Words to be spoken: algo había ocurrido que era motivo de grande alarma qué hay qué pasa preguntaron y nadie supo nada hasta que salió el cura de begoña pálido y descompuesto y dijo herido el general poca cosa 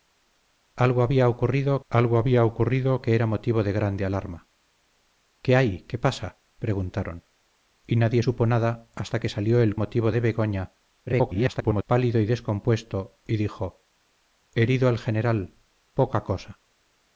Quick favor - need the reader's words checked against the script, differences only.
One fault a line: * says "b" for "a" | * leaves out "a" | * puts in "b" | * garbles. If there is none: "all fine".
* puts in "algo había ocurrido"
* says "motivo" for "cura"
* garbles